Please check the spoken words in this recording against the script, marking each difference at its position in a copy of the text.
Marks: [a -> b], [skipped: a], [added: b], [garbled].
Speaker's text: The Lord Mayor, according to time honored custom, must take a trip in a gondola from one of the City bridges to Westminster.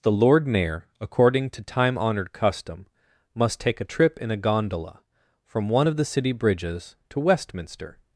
The Lord Mayor, according to time honored custom, must take a trip in a gondola from one of the City bridges to Westminster.